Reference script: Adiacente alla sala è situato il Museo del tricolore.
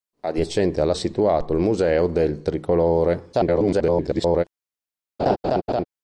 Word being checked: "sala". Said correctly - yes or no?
no